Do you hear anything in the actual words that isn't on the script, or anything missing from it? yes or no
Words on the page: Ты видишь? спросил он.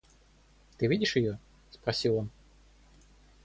yes